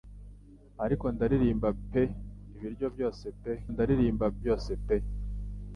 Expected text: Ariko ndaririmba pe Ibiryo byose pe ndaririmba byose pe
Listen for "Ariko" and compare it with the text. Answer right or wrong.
right